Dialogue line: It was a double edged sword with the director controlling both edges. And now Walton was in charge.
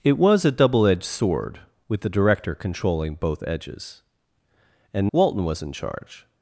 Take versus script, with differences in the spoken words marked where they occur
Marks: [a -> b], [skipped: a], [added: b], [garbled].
It was a double edged sword with the director controlling both edges. And [skipped: now] Walton was in charge.